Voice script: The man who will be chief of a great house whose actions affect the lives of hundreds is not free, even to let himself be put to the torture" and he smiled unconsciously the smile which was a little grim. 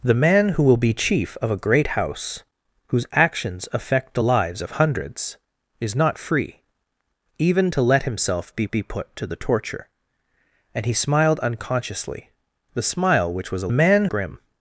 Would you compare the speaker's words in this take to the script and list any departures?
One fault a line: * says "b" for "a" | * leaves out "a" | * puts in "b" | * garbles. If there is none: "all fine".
* puts in "be"
* says "man" for "little"